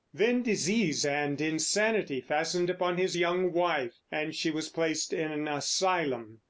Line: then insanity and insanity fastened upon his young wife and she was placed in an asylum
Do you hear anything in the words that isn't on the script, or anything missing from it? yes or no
yes